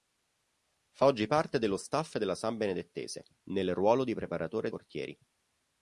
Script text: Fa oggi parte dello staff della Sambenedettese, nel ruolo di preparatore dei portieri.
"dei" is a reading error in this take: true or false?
true